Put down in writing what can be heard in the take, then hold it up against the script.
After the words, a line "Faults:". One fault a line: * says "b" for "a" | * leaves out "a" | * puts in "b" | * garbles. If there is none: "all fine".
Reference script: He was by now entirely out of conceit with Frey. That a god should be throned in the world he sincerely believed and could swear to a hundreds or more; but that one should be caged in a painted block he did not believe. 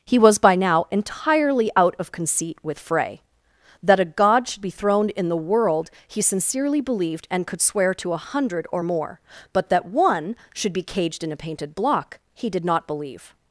He was by now entirely out of conceit with Frey. That a god should be throned in the world he sincerely believed and could swear to a hundred or more; but that one should be caged in a painted block he did not believe.
Faults:
* says "hundred" for "hundreds"